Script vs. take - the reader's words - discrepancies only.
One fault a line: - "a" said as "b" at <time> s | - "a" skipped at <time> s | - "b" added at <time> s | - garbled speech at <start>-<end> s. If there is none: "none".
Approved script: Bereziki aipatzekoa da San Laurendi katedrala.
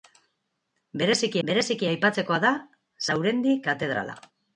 - "bereziki" added at 1.5 s
- "San" skipped at 2.5 s